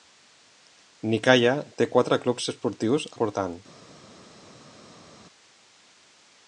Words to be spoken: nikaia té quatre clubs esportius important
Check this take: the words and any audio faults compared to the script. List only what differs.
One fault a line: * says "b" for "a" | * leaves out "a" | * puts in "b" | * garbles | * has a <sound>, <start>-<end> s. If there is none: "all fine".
all fine